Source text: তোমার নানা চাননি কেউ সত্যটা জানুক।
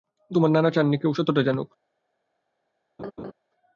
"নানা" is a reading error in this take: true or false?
false